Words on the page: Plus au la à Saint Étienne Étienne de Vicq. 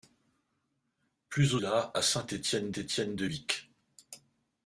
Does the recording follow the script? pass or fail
pass